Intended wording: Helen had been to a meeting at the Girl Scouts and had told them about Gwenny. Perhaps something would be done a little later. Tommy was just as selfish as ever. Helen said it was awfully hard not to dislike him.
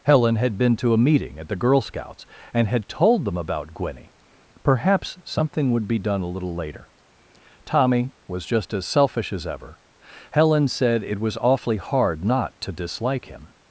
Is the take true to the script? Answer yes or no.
yes